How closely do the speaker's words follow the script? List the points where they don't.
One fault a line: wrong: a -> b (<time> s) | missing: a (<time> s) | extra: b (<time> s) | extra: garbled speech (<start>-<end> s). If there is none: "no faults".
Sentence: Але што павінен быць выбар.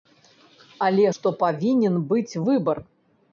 no faults